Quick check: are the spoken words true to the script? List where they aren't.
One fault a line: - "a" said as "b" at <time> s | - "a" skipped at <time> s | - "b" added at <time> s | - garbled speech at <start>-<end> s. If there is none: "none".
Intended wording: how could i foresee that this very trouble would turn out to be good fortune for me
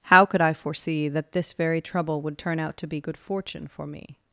none